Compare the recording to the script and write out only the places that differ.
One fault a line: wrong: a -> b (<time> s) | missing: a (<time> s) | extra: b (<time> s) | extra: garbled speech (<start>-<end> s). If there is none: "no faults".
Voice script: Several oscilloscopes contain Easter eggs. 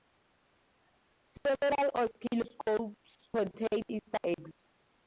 no faults